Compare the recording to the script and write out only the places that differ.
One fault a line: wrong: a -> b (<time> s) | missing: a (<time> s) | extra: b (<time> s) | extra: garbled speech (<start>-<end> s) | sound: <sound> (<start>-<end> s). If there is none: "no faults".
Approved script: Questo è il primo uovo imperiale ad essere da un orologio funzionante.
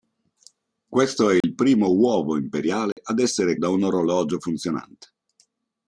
sound: dropout (1.4-1.4 s)
sound: dropout (2.9-3.0 s)